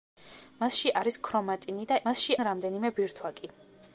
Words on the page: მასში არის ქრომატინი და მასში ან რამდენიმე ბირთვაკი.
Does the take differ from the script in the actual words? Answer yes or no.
no